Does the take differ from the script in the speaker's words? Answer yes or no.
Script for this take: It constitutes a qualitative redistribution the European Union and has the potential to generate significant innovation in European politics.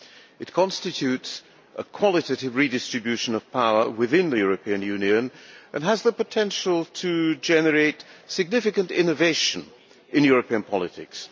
yes